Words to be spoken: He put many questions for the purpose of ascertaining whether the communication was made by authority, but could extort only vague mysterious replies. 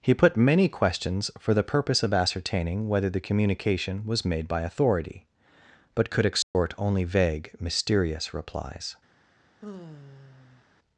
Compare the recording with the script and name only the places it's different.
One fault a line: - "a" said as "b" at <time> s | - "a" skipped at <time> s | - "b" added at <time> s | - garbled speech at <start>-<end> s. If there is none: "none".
none